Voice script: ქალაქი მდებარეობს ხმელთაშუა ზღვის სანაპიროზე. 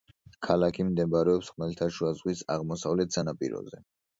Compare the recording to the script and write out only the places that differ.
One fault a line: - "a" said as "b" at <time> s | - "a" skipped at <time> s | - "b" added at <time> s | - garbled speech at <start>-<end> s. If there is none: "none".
- "აღმოსავლეთ" added at 2.6 s